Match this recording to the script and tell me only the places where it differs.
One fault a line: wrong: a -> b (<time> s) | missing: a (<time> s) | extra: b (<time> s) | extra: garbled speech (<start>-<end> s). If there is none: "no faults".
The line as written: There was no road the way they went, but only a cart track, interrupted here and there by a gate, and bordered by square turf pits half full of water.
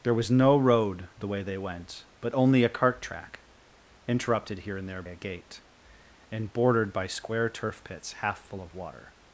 missing: by (5.0 s)